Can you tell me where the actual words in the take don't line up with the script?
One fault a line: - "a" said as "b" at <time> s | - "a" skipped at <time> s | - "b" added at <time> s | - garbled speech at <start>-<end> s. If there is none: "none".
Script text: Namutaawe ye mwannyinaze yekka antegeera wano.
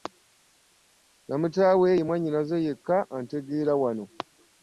none